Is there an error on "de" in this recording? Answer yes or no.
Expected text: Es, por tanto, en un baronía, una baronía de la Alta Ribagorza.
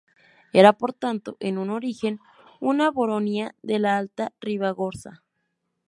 no